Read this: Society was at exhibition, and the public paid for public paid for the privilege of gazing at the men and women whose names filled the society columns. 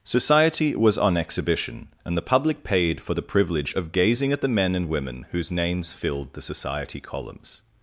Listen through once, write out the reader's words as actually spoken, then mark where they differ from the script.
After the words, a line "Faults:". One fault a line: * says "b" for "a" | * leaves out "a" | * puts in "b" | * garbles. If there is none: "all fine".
Society was on exhibition, and the public paid for the privilege of gazing at the men and women whose names filled the society columns.
Faults:
* says "on" for "at"
* leaves out "public paid for"